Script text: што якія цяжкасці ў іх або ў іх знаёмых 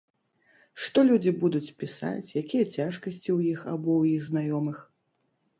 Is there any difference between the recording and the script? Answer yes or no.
yes